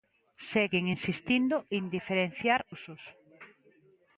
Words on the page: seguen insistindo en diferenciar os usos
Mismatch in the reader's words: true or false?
true